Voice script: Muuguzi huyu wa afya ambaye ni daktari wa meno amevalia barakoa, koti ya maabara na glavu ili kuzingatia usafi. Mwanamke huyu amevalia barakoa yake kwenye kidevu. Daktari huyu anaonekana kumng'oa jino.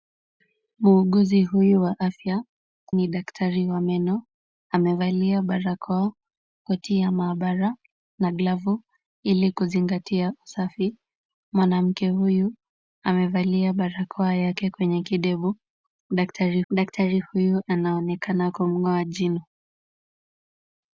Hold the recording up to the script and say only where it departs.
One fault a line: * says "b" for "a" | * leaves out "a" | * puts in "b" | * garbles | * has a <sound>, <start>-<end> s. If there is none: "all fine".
* leaves out "ambaye"
* puts in "daktari"